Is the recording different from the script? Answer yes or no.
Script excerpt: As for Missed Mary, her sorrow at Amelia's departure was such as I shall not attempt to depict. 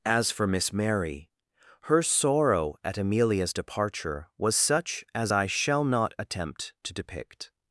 yes